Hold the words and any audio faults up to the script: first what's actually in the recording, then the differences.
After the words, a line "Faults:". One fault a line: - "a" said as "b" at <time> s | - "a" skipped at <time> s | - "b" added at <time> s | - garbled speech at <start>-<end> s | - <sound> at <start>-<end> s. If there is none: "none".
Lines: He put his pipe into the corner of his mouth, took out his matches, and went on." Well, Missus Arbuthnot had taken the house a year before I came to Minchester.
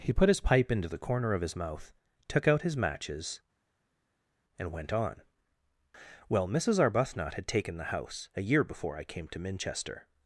He put his pipe into the corner of his mouth, took out his matches, and went on." Well, Missus Arbuthnot had taken the house a year before I came to Minchester.
Faults:
none